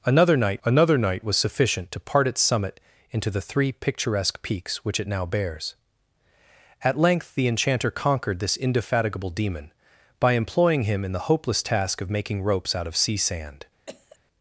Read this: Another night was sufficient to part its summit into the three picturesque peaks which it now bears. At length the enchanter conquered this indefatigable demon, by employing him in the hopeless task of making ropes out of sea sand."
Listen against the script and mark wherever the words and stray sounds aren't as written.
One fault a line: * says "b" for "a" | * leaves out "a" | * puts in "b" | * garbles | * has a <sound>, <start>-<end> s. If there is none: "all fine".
* puts in "another night"
* has a cough, 13.9-14.2 s